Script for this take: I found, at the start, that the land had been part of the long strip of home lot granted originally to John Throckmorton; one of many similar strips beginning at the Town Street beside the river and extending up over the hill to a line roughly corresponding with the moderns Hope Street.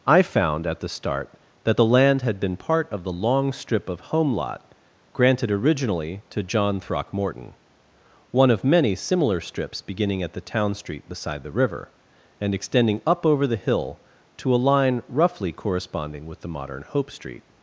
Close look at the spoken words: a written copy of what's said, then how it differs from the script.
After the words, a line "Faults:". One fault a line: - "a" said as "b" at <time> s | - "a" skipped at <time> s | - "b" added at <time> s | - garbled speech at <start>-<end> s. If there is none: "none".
I found, at the start, that the land had been part of the long strip of home lot granted originally to John Throckmorton; one of many similar strips beginning at the Town Street beside the river and extending up over the hill to a line roughly corresponding with the modern Hope Street.
Faults:
- "moderns" said as "modern" at 16.5 s